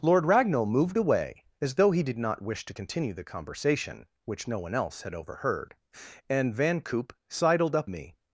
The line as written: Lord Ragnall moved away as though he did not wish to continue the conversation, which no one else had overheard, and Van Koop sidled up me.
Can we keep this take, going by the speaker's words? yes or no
yes